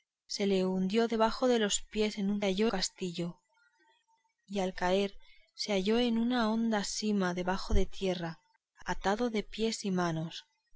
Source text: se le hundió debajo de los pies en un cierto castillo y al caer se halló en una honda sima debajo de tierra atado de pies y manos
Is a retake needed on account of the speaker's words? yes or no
yes